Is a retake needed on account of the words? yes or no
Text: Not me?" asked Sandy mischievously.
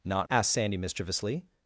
yes